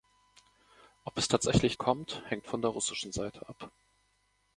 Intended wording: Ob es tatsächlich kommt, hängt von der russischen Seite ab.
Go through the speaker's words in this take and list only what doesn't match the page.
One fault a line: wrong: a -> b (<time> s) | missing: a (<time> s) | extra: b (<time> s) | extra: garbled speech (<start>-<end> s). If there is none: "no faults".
no faults